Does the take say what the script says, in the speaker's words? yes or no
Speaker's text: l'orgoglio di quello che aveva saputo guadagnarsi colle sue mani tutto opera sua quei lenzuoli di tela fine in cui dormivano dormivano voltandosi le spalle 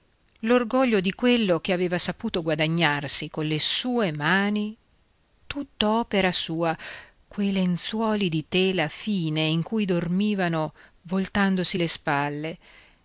no